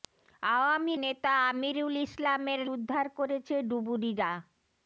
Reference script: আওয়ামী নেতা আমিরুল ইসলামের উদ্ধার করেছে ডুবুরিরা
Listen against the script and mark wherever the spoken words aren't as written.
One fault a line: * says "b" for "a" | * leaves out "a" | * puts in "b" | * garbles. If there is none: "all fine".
all fine